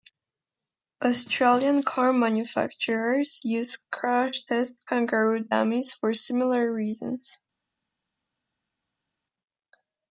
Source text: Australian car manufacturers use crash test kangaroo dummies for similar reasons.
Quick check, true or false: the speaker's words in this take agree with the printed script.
true